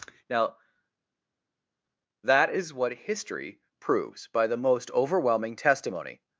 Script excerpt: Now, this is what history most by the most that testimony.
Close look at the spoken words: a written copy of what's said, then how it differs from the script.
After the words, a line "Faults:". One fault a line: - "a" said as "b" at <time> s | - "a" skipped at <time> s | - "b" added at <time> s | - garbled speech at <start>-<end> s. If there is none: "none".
Now, that is what history proves by the most overwhelming testimony.
Faults:
- "this" said as "that" at 2.2 s
- "most" said as "proves" at 3.8 s
- "that" said as "overwhelming" at 4.9 s